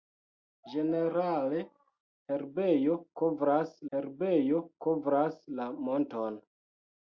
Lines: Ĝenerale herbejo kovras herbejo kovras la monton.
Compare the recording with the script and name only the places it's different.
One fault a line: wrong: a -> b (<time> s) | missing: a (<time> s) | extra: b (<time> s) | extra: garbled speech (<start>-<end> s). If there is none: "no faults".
no faults